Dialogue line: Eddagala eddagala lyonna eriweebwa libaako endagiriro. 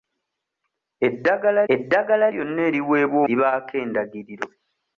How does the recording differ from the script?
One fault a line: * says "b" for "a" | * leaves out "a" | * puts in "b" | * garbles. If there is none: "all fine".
all fine